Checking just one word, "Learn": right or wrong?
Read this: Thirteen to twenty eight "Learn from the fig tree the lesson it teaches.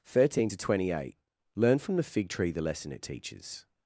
right